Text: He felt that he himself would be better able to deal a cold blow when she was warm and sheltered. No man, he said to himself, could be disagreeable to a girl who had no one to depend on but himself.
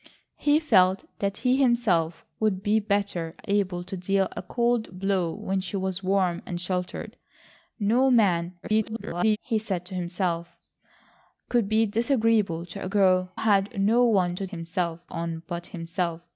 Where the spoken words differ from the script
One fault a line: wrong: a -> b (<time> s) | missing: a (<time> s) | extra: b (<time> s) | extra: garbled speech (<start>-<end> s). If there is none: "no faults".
extra: garbled speech (8.6-9.4 s)
missing: who (13.3 s)
wrong: depend -> himself (14.4 s)